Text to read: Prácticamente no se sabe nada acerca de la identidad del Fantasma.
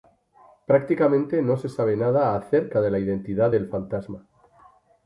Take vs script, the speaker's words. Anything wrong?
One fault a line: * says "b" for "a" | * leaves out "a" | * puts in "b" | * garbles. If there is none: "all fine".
all fine